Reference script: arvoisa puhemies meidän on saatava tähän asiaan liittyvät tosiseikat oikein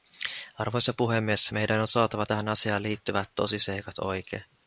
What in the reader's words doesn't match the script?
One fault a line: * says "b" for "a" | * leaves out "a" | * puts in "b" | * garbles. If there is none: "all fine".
all fine